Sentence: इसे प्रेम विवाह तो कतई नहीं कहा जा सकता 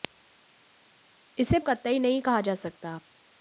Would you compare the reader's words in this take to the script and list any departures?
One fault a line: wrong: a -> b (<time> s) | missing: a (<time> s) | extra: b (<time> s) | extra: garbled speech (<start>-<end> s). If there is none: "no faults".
missing: प्रेम विवाह तो (1.6 s)